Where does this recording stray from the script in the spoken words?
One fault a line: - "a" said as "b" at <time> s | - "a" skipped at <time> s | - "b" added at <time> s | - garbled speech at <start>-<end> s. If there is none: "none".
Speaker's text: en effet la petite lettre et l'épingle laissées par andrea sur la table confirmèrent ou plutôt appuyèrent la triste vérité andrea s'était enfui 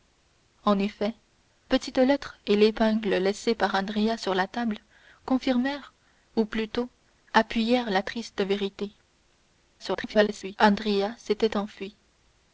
- "la" skipped at 1.1 s
- garbled speech at 9.8-10.6 s